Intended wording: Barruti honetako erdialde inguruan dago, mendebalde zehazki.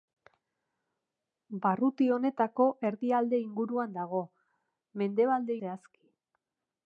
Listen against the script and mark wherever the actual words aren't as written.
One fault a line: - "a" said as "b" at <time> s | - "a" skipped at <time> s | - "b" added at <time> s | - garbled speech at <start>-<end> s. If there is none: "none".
none